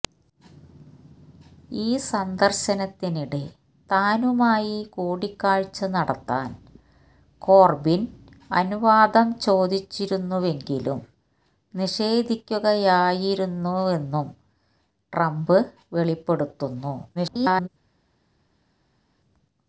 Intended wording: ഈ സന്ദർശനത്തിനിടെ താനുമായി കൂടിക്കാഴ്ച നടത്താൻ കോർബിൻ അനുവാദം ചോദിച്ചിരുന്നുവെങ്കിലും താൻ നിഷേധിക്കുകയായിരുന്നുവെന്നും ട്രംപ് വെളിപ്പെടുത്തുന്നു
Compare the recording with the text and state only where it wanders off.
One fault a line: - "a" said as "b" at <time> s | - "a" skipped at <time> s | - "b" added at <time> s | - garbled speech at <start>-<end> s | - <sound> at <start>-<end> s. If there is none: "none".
- "താൻ" skipped at 11.0 s
- garbled speech at 17.1-17.7 s